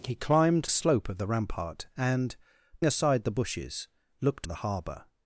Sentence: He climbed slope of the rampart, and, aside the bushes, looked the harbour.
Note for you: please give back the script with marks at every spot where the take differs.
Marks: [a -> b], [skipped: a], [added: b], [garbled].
He climbed slope of the rampart, and, aside the bushes, looked the harbour.